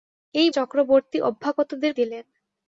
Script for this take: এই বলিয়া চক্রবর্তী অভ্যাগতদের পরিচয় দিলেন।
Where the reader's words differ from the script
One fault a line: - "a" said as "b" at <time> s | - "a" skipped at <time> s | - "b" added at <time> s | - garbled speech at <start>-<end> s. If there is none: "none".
- "বলিয়া" skipped at 0.5 s
- "পরিচয়" skipped at 1.9 s